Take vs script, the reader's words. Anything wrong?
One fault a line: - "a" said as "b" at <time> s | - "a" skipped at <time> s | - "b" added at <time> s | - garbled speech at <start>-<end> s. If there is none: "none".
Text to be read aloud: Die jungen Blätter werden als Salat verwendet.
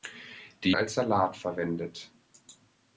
- "jungen Blätter werden" skipped at 0.7 s